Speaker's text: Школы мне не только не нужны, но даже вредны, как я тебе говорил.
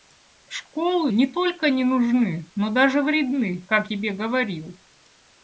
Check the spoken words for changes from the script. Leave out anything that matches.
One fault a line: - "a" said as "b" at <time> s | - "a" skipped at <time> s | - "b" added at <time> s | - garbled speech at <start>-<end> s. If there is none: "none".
- "мне" skipped at 1.1 s
- "я" skipped at 3.9 s